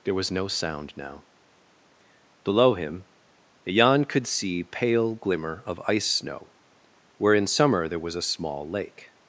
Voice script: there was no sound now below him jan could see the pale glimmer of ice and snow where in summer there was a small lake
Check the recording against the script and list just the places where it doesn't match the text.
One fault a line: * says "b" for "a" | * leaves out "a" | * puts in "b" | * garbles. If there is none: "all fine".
* leaves out "the"
* leaves out "and"